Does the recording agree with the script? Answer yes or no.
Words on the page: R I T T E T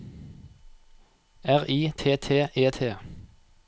yes